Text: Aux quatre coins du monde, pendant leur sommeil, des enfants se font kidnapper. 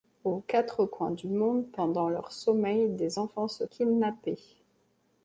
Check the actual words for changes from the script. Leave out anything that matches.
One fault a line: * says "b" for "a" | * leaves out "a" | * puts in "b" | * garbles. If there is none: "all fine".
* leaves out "font"